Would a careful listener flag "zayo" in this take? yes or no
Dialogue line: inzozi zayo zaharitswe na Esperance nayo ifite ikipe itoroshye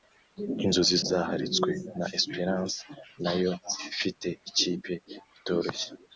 yes